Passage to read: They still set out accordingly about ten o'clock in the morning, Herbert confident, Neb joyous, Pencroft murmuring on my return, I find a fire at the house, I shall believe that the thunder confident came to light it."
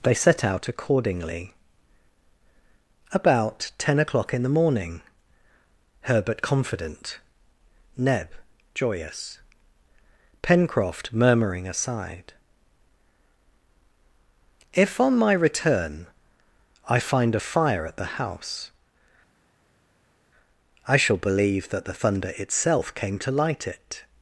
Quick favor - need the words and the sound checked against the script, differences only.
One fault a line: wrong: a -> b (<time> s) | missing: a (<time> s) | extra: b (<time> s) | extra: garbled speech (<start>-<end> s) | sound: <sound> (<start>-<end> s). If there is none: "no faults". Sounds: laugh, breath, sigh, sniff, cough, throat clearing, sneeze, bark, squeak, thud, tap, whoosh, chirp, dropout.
missing: still (0.1 s)
extra: aside If (11.7 s)
wrong: confident -> itself (22.4 s)